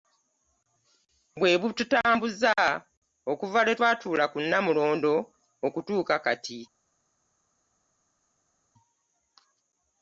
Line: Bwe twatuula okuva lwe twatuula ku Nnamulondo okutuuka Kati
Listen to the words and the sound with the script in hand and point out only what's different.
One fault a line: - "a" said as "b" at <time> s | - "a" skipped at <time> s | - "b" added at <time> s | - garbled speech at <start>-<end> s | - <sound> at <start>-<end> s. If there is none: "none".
- "twatuula" said as "bututambuza" at 1.6 s